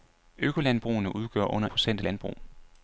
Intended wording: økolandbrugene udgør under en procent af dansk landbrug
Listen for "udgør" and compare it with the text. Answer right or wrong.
right